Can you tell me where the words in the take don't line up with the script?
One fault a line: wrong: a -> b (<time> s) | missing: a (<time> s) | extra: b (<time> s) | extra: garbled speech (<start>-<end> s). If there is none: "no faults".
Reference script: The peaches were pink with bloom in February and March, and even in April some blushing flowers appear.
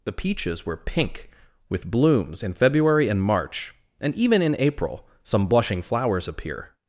wrong: bloom -> blooms (1.9 s)